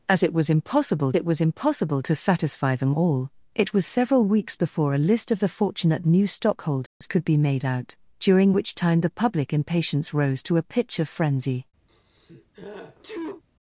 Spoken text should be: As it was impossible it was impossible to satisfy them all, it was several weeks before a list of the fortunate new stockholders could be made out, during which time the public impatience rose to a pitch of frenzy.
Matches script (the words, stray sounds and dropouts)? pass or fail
fail